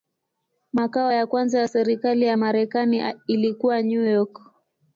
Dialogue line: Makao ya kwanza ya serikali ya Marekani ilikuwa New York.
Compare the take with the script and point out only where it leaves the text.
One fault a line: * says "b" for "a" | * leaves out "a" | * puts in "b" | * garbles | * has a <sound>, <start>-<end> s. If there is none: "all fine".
all fine